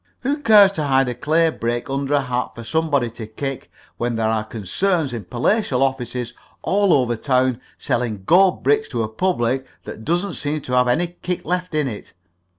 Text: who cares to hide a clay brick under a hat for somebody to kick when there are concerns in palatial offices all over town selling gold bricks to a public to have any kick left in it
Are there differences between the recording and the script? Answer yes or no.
yes